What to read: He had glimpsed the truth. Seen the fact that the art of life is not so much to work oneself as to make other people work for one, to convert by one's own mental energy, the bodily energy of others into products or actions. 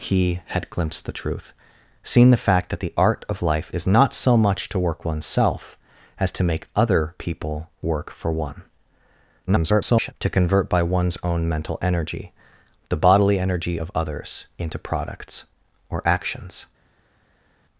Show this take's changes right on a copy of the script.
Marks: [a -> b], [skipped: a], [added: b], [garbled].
He had glimpsed the truth. Seen the fact that the art of life is not so much to work oneself as to make other people work for one, [garbled] to convert by one's own mental energy, the bodily energy of others into products or actions.